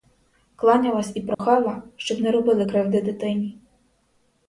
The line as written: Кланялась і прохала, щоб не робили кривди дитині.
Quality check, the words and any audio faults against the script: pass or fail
fail